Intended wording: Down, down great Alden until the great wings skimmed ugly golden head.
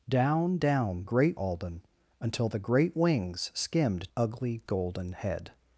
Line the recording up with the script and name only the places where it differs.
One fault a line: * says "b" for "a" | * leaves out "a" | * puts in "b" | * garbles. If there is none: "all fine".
all fine